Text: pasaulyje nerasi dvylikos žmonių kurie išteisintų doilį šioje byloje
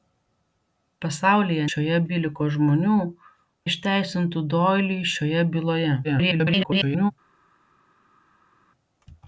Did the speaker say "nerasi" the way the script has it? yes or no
no